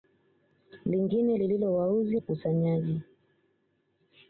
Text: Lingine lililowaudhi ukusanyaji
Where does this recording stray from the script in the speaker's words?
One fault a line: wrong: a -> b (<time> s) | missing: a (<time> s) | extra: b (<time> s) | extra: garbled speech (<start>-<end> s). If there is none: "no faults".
no faults